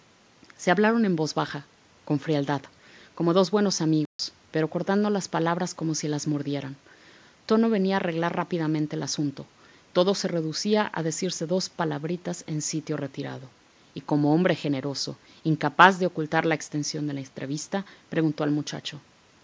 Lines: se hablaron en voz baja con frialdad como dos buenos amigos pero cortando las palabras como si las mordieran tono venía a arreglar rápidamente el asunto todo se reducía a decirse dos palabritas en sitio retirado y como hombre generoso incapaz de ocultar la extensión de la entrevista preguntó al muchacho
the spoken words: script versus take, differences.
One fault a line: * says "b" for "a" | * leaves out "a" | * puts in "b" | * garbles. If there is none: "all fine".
all fine